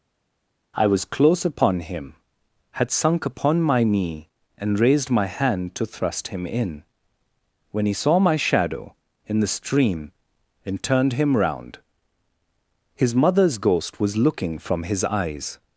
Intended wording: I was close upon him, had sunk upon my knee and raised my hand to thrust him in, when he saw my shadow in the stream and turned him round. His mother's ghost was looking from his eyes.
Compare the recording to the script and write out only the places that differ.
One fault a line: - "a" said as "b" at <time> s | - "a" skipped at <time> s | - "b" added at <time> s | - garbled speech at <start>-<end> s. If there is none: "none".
none